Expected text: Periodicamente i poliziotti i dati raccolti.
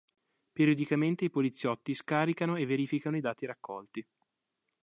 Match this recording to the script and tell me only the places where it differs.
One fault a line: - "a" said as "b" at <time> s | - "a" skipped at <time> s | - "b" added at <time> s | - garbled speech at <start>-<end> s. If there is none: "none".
- "scaricano e verificano" added at 1.9 s